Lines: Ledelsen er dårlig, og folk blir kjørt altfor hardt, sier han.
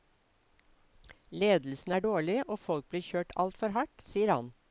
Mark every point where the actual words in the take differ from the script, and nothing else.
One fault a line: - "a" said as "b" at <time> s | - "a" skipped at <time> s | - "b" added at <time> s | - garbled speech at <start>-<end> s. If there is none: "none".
none